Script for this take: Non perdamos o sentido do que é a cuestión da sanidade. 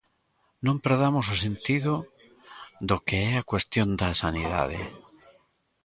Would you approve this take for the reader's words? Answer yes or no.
yes